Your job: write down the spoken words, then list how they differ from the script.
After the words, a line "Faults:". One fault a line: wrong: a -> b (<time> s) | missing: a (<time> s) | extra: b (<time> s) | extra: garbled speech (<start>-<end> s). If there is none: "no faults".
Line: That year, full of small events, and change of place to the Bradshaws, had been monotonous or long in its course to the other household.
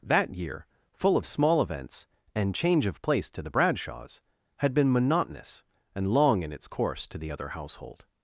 That year, full of small events, and change of place to the Bradshaws, had been monotonous and long in its course to the other household.
Faults:
wrong: or -> and (5.9 s)